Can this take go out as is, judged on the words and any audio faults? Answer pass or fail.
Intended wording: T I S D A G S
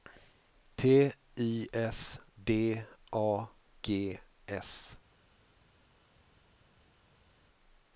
pass